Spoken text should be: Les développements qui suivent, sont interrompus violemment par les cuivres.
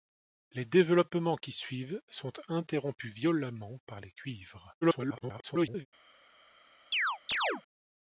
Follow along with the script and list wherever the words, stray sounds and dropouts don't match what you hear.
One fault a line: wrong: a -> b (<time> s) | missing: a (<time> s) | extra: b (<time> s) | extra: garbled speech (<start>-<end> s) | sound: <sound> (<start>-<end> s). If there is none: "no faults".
extra: garbled speech (4.8-5.9 s)
sound: chirp (6.9-7.6 s)